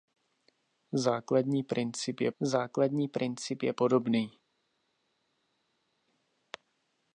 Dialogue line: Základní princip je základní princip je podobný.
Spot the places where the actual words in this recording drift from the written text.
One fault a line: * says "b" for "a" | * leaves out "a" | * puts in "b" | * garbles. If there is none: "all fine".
all fine